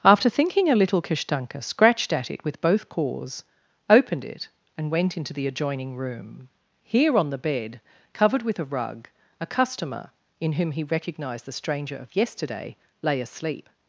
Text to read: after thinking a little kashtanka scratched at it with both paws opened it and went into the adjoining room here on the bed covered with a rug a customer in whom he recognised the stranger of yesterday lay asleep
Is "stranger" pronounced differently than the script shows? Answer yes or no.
no